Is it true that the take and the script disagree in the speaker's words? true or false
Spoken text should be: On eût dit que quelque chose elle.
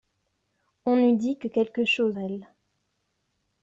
false